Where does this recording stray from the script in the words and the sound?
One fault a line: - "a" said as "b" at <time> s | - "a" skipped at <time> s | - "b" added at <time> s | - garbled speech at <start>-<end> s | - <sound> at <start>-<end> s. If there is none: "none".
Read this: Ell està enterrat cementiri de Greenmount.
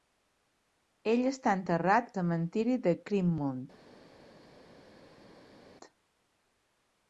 none